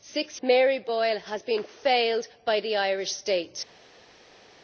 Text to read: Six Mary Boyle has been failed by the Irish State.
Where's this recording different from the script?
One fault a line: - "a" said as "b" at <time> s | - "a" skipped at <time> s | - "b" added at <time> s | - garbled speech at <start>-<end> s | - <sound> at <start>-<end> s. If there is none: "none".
none